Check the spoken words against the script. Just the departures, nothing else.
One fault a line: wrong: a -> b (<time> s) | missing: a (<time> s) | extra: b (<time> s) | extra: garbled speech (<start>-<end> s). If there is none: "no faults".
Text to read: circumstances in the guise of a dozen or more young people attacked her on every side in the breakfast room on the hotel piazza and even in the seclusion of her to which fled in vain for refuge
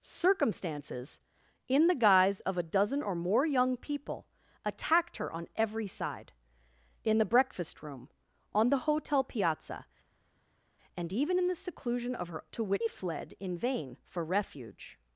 no faults